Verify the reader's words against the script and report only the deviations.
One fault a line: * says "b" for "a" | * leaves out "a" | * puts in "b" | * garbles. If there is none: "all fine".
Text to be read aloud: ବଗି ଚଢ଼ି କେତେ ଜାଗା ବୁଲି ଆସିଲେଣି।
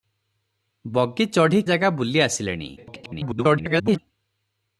* leaves out "କେତେ"
* garbles